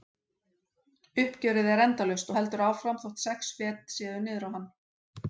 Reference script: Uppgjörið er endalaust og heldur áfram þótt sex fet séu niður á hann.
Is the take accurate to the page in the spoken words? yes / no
yes